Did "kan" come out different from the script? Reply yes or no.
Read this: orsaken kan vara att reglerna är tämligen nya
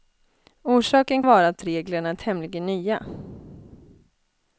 yes